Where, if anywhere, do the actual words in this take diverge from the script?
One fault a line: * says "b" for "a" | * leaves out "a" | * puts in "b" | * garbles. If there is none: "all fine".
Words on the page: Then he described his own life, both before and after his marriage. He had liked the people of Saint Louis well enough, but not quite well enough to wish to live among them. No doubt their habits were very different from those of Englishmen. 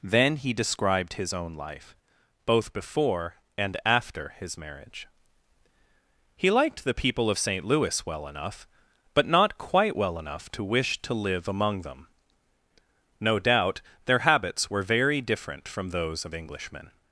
* leaves out "had"